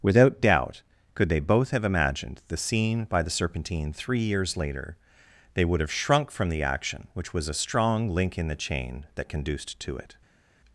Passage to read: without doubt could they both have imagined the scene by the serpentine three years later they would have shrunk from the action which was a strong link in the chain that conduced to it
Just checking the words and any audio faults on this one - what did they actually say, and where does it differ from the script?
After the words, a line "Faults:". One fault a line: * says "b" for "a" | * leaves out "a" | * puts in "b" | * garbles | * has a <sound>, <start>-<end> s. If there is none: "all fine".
without doubt could they both have imagined the scene by the serpentine three years later they would have shrunk from the action which was a strong link in the chain that conduced to it
Faults:
all fine